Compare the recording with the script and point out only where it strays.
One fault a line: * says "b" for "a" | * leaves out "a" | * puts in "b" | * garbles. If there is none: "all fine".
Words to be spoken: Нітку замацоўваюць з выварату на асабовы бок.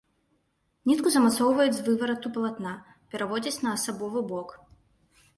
* puts in "палатна пераводзяць"